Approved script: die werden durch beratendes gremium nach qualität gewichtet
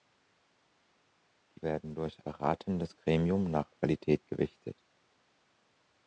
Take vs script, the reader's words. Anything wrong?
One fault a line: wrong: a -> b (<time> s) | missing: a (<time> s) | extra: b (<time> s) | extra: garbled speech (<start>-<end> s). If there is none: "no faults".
no faults